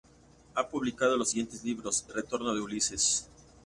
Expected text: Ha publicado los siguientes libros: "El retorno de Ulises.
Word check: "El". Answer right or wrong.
wrong